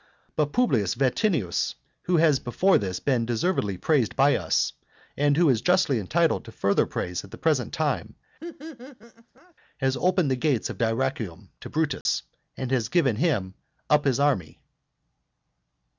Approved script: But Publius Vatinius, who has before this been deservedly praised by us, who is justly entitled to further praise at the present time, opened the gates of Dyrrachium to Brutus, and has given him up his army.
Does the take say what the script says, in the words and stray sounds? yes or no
no